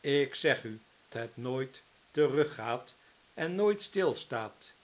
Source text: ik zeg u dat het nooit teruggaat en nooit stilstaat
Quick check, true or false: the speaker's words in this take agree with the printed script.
false